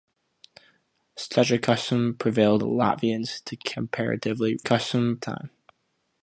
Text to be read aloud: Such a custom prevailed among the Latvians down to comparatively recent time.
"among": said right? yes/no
no